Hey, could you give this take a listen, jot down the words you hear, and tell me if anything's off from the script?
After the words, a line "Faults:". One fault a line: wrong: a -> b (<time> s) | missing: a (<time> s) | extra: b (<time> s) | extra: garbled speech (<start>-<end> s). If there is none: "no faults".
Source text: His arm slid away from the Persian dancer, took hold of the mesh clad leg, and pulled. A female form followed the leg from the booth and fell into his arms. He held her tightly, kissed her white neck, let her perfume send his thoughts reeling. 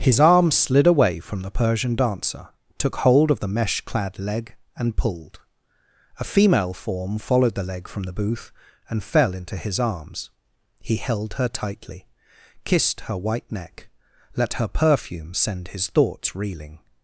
His arm slid away from the Persian dancer, took hold of the mesh clad leg, and pulled. A female form followed the leg from the booth and fell into his arms. He held her tightly, kissed her white neck, let her perfume send his thoughts reeling.
Faults:
no faults